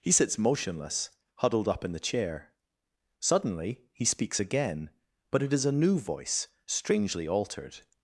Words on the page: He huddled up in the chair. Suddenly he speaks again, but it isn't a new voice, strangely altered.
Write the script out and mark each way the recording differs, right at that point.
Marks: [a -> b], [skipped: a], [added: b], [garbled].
He [added: sits motionless] huddled up in the chair. Suddenly he speaks again, but it [isn't -> is] a new voice, strangely altered.